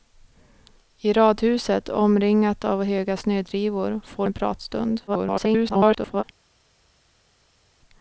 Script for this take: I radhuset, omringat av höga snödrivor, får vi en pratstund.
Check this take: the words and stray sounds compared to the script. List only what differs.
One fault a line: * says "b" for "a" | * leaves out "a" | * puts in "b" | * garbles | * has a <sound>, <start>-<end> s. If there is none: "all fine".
* leaves out "vi"
* garbles